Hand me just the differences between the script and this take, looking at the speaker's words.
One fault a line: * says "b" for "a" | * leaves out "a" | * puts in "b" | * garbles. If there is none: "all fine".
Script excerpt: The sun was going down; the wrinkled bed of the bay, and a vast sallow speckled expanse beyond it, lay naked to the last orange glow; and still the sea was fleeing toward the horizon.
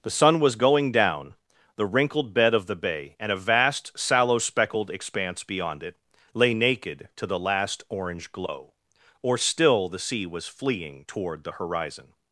* says "or" for "and"